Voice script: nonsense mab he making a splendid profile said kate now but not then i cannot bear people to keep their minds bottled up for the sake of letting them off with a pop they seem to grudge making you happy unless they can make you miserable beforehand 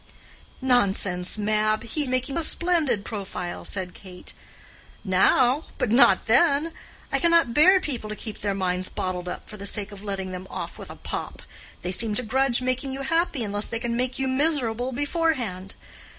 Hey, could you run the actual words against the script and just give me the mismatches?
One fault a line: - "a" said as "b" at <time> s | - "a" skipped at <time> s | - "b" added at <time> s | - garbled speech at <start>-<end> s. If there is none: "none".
none